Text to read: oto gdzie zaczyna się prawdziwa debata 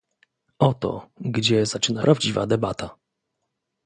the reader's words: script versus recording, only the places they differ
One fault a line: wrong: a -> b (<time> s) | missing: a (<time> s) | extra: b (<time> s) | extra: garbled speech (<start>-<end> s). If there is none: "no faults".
missing: się (2.0 s)